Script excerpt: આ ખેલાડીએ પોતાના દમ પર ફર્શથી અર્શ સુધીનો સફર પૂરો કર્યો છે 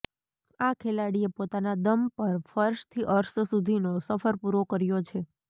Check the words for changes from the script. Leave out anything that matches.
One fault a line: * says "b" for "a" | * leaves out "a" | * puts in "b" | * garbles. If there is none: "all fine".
all fine